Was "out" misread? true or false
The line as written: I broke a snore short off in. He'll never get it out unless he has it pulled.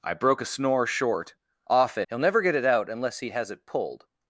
false